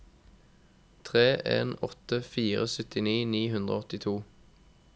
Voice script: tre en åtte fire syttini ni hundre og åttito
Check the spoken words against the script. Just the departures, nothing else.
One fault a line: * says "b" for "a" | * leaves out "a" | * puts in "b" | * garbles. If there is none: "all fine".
all fine